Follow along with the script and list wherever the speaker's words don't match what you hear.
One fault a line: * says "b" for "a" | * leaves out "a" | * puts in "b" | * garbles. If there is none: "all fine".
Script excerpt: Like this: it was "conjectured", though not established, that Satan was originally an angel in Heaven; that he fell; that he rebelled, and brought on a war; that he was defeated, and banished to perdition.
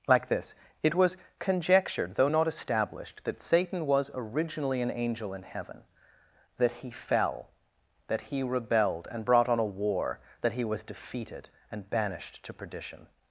all fine